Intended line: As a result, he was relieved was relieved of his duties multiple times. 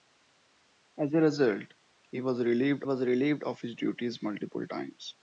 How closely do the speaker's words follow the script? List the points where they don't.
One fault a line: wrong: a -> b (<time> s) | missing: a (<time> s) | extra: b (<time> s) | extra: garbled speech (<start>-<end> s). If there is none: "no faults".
no faults